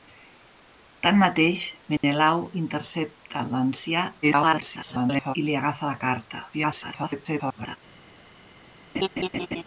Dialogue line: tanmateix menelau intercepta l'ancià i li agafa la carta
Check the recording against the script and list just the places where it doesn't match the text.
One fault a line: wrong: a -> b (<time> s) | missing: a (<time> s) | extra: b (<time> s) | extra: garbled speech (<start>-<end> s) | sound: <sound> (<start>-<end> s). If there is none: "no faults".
sound: dropout (2.0-2.0 s)
extra: garbled speech (4.2-5.4 s)
extra: garbled speech (6.5-7.8 s)
sound: laugh (8.9-9.6 s)